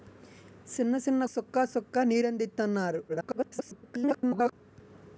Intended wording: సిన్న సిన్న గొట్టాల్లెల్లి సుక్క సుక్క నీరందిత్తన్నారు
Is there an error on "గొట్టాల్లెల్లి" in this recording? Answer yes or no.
yes